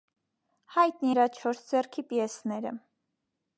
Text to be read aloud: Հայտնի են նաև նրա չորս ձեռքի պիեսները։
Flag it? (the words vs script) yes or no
yes